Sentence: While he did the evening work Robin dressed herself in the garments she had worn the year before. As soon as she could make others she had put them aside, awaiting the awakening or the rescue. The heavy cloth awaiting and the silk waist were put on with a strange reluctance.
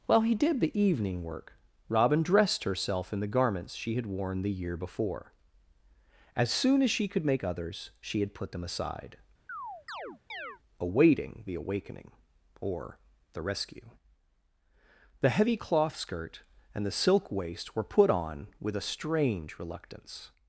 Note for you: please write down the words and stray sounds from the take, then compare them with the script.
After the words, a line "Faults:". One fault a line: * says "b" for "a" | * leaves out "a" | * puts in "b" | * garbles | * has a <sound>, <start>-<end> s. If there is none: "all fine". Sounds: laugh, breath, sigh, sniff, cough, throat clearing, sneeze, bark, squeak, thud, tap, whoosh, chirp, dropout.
While he did the evening work Robin dressed herself in the garments she had worn the year before. As soon as she could make others she had put them aside, awaiting the awakening or the rescue. The heavy cloth skirt and the silk waist were put on with a strange reluctance.
Faults:
* has a chirp, 9.5-10.6 s
* says "skirt" for "awaiting"